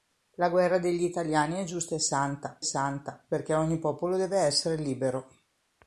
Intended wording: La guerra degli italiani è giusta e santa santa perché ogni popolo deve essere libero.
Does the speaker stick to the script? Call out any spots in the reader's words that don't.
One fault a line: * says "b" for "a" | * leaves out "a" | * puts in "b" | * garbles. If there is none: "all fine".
all fine